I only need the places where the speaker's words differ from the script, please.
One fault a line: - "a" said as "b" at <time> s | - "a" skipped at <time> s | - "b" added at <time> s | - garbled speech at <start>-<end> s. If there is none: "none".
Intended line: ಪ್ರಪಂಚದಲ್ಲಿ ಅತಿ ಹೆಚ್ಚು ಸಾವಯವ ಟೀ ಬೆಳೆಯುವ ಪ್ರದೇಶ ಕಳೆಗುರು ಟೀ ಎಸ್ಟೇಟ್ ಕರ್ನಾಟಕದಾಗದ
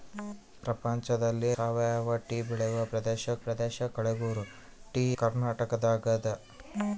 - "ಅತಿ ಹೆಚ್ಚು" skipped at 1.5 s
- "ಪ್ರದೇಶ" added at 3.4 s
- "ಎಸ್ಟೇಟ್" skipped at 5.1 s